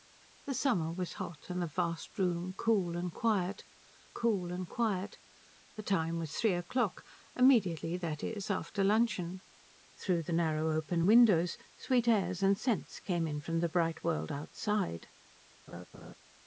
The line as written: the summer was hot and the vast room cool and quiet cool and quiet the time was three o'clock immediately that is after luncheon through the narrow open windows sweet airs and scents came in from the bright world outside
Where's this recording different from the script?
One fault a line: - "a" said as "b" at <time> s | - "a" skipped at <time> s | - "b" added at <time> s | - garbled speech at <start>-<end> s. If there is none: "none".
none